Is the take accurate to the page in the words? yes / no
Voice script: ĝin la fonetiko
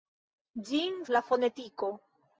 yes